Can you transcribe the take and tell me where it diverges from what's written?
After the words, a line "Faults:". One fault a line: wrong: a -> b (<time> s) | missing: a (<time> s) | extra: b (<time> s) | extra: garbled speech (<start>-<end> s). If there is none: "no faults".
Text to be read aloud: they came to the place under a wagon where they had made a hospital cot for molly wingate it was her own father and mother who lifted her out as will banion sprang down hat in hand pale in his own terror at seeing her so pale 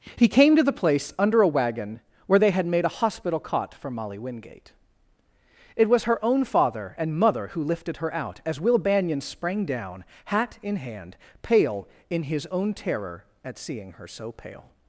he came to the place under a wagon where they had made a hospital cot for molly wingate it was her own father and mother who lifted her out as will banion sprang down hat in hand pale in his own terror at seeing her so pale
Faults:
wrong: they -> he (0.1 s)